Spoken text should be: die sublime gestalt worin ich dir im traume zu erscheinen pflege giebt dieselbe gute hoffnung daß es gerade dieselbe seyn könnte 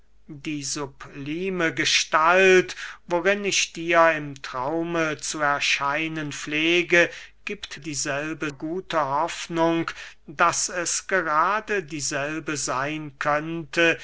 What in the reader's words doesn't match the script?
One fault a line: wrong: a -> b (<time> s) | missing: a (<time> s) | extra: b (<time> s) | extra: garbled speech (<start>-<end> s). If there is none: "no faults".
no faults